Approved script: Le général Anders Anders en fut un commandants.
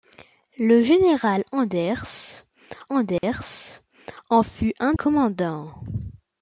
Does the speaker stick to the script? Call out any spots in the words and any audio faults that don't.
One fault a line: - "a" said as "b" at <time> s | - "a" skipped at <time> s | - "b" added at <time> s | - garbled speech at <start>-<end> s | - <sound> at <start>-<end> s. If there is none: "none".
- dropout at 3.2-3.2 s